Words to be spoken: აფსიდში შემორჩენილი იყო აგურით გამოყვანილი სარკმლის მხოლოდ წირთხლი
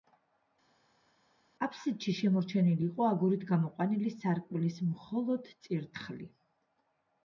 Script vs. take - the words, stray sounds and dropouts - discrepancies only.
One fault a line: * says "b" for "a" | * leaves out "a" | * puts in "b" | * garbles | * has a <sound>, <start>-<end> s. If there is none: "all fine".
all fine